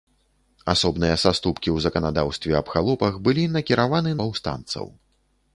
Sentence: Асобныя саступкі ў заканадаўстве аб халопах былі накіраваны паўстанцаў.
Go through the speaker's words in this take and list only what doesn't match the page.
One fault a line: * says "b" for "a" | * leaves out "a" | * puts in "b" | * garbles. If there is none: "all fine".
all fine